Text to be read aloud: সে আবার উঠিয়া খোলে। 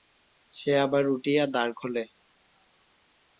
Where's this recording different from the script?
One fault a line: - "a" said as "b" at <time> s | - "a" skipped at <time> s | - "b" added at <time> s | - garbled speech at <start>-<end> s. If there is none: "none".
- "দ্বার" added at 1.5 s